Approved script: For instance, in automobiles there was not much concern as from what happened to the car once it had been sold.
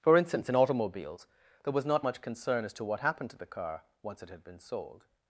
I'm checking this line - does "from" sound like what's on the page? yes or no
no